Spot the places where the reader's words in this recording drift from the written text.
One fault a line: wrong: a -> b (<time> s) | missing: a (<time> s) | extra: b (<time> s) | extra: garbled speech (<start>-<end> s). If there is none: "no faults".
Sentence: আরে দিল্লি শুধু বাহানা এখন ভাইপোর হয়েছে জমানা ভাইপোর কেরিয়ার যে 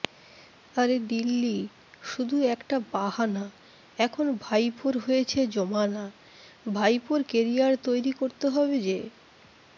extra: একটা (2.5 s)
extra: তৈরি করতে হবে (7.9 s)